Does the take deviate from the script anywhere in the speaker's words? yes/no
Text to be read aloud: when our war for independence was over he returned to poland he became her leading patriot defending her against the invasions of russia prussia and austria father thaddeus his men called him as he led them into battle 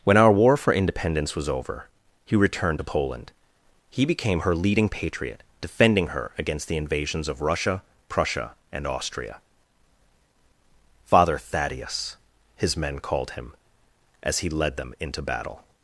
no